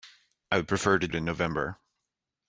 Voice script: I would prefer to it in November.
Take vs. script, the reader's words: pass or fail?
pass